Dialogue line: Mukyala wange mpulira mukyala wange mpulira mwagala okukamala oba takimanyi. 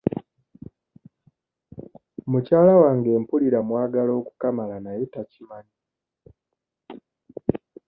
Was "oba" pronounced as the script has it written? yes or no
no